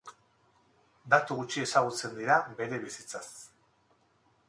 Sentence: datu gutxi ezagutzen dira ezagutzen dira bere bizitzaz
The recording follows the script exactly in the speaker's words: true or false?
false